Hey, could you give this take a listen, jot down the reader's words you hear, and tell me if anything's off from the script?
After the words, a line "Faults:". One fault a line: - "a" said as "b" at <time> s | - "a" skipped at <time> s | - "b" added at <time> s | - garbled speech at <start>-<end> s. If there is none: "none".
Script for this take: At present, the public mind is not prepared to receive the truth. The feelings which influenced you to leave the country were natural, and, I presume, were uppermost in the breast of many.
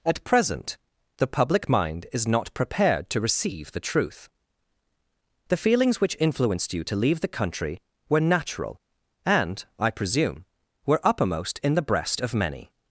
At present, the public mind is not prepared to receive the truth. The feelings which influenced you to leave the country were natural, and, I presume, were uppermost in the breast of many.
Faults:
none